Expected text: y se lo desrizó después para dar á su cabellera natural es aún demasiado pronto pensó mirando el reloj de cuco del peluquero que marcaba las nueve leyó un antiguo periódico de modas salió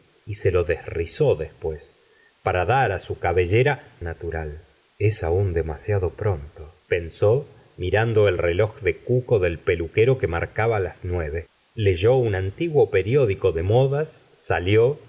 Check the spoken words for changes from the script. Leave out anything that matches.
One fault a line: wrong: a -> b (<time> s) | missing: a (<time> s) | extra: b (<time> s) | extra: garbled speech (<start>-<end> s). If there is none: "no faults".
no faults